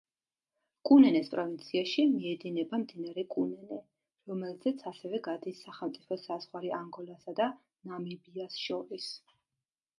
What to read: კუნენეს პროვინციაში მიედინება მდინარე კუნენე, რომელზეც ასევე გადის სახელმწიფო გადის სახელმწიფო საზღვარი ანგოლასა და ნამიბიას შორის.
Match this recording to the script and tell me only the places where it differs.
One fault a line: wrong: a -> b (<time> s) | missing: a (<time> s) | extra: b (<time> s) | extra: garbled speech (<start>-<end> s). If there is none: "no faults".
missing: გადის სახელმწიფო (6.2 s)